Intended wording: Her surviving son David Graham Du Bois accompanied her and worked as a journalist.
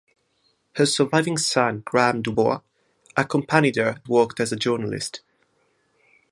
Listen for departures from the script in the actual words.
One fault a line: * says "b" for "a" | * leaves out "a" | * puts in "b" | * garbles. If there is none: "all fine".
* leaves out "David"
* leaves out "and"